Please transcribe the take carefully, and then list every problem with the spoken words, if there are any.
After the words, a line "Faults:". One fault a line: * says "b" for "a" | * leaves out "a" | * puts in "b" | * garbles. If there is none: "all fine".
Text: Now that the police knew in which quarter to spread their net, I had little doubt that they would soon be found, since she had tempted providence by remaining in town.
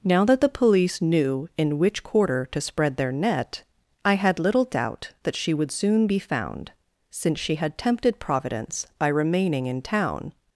Now that the police knew in which quarter to spread their net, I had little doubt that she would soon be found, since she had tempted providence by remaining in town.
Faults:
* says "she" for "they"